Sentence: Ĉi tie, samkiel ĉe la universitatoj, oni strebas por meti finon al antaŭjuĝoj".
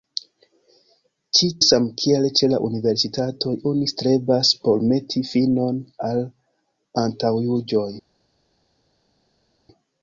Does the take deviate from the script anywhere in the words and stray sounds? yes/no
yes